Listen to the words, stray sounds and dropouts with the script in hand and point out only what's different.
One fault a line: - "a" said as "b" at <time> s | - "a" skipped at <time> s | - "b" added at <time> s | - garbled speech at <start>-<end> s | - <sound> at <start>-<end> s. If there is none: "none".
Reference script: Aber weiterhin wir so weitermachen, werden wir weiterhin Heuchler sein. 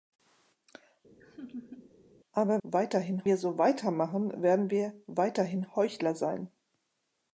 - laugh at 1.2-2.0 s